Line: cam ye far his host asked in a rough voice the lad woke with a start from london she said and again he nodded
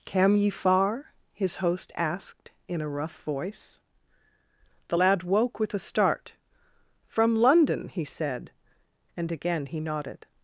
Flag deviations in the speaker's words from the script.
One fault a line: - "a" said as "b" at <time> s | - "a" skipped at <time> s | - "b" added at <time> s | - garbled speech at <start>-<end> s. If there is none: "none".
- "she" said as "he" at 7.9 s